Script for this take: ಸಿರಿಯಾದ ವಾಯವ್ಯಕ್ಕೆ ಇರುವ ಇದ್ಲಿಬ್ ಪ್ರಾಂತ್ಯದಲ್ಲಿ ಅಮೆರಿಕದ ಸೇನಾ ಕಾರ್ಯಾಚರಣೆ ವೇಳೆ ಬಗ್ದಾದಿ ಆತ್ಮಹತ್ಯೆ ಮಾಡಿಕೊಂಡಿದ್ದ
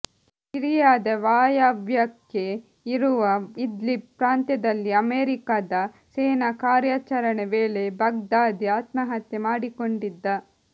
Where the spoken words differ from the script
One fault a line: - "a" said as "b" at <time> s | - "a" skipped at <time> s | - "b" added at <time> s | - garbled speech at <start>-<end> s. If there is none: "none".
none